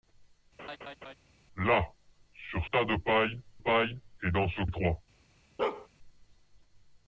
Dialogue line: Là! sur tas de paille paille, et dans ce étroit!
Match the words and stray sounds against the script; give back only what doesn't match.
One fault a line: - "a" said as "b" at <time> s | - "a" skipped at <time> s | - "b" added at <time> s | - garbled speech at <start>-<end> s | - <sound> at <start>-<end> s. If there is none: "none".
- laugh at 0.6-1.1 s
- bark at 5.6-5.9 s